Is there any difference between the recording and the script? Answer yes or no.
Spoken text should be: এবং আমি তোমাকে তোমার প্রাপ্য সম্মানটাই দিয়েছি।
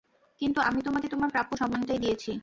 yes